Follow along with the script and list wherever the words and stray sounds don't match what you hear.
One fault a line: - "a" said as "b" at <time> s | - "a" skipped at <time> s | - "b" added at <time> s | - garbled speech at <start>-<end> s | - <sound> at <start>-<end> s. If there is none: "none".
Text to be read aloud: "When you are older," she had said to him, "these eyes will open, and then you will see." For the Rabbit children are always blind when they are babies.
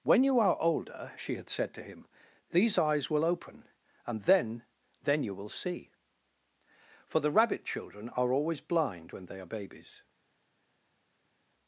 - "then" added at 5.0 s